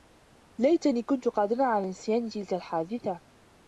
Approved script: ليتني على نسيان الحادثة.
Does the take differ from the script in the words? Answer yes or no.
yes